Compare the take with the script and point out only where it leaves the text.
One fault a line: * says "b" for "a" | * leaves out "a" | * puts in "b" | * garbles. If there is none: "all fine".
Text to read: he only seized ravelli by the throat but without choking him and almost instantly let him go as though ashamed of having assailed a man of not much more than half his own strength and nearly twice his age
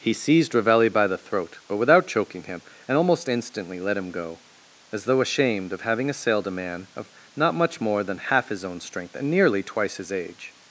* leaves out "only"